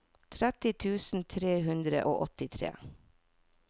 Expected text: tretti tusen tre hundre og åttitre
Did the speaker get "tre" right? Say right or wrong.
right